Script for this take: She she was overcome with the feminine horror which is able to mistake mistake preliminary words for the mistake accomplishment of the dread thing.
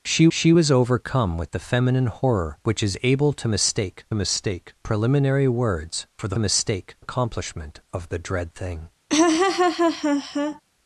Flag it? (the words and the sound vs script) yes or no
yes